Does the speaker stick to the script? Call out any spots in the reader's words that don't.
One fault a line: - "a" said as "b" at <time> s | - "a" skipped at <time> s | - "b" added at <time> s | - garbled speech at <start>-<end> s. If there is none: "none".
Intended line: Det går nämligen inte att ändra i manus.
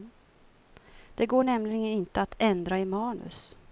none